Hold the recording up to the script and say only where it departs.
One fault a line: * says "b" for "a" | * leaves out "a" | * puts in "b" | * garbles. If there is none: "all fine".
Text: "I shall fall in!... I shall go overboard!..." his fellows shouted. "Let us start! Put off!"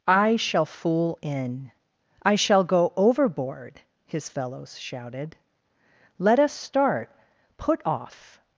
* says "fool" for "fall"